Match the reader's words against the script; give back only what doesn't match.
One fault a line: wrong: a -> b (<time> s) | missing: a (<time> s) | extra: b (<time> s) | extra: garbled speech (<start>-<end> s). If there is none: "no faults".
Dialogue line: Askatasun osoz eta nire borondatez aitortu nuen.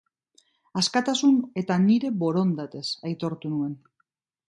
missing: osoz (1.4 s)